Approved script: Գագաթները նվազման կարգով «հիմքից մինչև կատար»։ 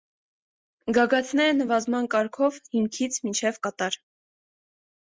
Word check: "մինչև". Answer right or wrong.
right